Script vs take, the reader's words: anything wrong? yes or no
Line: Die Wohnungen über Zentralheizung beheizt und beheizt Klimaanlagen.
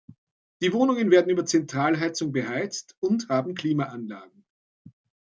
yes